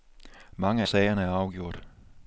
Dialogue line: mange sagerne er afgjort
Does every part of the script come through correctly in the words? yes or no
yes